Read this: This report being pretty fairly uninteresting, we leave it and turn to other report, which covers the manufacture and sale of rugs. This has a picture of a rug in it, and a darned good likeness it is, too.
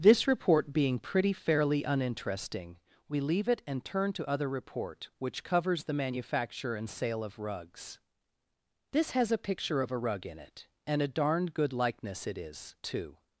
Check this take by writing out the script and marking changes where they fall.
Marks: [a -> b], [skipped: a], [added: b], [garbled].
This report being pretty fairly uninteresting, we leave it and turn to other report, which covers the manufacture and sale of rugs. This has a picture of a rug in it, and a darned good likeness it is, too.